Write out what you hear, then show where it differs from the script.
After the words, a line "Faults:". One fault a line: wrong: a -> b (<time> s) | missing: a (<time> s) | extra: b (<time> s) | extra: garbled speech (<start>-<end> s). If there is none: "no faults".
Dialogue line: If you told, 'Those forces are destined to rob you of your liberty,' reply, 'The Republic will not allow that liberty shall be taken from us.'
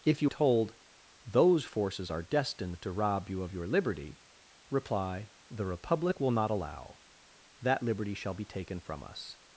If you told, 'Those forces are destined to rob you of your liberty,' reply, 'The Republic will not allow that liberty shall be taken from us.'
Faults:
no faults